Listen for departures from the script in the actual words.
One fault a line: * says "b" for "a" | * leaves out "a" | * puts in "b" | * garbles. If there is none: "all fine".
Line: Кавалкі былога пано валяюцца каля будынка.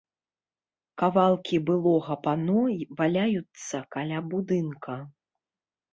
all fine